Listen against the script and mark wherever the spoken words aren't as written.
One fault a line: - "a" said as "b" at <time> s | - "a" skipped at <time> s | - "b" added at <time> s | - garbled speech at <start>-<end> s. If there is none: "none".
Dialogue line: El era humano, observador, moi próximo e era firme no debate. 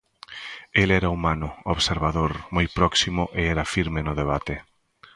none